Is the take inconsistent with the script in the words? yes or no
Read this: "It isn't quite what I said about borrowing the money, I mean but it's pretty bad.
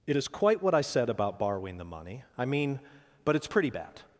yes